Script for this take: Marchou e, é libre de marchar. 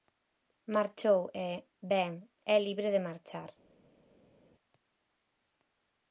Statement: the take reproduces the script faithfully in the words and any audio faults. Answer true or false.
false